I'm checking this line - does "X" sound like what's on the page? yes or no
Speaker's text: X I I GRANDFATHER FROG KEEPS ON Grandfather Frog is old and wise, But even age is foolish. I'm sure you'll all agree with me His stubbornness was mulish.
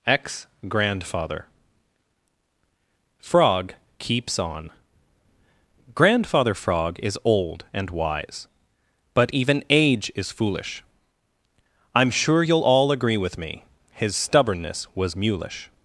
no